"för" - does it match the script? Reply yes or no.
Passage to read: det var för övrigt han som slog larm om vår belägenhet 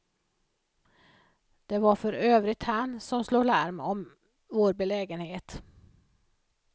yes